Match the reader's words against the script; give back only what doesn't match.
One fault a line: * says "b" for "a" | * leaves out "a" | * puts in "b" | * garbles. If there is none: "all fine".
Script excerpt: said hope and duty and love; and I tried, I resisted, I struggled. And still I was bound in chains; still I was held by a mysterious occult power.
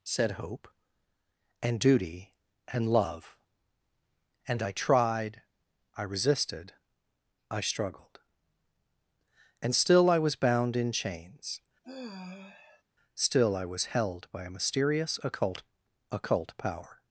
* puts in "occult"